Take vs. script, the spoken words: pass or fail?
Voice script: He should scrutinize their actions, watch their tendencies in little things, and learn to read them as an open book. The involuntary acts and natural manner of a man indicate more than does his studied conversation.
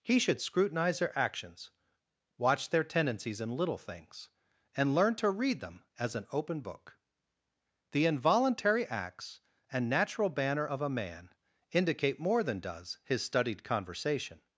fail